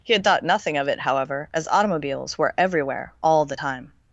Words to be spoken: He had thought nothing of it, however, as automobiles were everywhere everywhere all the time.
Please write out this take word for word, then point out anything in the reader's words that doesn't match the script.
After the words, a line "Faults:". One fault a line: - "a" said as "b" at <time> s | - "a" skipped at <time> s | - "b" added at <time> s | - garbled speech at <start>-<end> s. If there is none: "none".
He had thought nothing of it, however, as automobiles were everywhere all the time.
Faults:
- "everywhere" skipped at 3.1 s